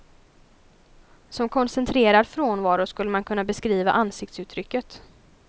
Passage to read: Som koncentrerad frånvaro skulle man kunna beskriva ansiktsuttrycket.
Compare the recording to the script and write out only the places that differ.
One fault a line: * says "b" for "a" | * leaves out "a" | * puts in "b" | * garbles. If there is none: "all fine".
all fine